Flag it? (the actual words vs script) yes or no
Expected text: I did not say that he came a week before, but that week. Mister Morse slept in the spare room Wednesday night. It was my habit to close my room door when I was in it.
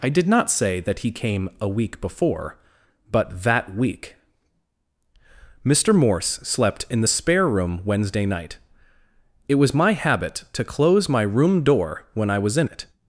no